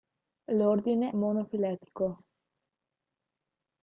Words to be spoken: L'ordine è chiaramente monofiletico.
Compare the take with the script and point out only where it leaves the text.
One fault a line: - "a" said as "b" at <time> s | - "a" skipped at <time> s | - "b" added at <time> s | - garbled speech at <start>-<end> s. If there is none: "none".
- "è chiaramente" skipped at 1.1 s